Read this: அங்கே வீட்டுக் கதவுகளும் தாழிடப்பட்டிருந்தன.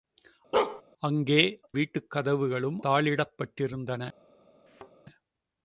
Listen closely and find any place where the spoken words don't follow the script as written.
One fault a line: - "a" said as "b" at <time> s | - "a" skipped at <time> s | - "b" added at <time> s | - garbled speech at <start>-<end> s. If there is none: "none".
none